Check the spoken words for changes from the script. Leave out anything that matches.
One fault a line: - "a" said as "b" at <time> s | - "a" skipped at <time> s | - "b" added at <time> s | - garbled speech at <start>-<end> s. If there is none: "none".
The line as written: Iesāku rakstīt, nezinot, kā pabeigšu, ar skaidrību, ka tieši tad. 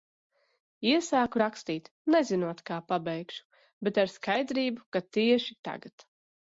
- "bet" added at 3.9 s
- "tad" said as "tagad" at 5.7 s